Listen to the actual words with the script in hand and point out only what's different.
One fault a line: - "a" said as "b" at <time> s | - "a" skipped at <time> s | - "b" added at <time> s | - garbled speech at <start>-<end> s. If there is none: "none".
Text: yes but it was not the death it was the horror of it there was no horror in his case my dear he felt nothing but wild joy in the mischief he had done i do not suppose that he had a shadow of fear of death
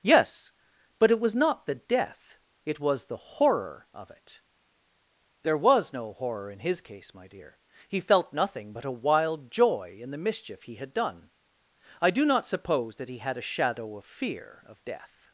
- "a" added at 8.9 s